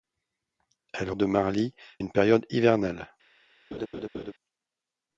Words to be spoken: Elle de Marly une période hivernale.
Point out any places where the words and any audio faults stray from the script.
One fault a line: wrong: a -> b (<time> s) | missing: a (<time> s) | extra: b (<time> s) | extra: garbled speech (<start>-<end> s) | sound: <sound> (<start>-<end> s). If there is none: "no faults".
sound: laugh (3.7-4.3 s)